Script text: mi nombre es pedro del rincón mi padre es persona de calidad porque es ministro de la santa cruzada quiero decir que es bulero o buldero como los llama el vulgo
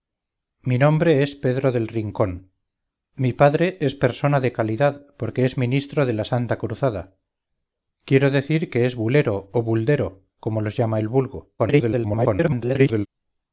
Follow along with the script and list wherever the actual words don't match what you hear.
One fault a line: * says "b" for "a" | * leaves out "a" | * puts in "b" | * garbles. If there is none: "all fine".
* garbles